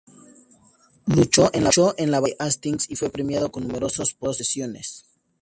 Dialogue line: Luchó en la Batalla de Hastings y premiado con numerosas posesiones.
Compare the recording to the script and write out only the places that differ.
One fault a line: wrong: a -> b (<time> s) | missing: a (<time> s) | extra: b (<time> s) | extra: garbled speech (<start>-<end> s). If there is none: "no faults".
extra: fue (2.9 s)